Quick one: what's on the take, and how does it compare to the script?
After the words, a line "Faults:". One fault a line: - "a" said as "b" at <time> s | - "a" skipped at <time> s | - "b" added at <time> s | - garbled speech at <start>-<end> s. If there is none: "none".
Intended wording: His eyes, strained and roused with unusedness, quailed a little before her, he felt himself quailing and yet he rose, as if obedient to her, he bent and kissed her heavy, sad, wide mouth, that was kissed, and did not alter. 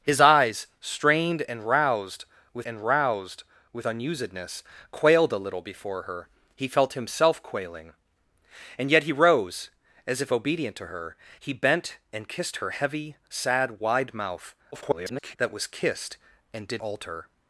His eyes, strained and roused with and roused with unusedness, quailed a little before her, he felt himself quailing and yet he rose, as if obedient to her, he bent and kissed her heavy, sad, wide mouth, [garbled] that was kissed, and did alter.
Faults:
- "and roused with" added at 2.6 s
- garbled speech at 14.7-15.4 s
- "not" skipped at 16.8 s